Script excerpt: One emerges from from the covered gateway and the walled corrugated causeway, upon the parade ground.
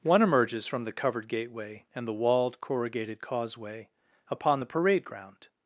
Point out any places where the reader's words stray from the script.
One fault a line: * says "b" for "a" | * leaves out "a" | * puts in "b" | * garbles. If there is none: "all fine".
* leaves out "from"